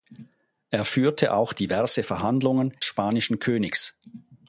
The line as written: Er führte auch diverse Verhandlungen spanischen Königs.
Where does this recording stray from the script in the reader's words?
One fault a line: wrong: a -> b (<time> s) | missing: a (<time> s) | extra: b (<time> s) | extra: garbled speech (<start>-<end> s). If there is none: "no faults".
no faults